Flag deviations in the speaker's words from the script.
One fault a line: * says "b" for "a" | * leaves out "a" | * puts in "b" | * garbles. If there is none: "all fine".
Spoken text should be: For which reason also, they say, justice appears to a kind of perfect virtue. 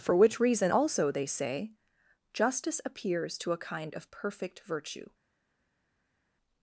all fine